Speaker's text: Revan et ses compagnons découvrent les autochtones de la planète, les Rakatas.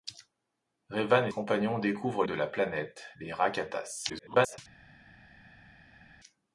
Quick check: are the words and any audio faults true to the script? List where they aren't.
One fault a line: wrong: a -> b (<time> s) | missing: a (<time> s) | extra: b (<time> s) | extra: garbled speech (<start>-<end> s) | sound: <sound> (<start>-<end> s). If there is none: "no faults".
missing: ses (1.3 s)
missing: les autochtones (2.2 s)
extra: garbled speech (4.1-4.6 s)